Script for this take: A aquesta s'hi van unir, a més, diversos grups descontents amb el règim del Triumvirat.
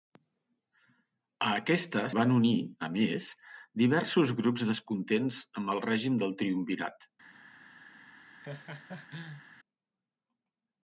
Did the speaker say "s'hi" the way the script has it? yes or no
no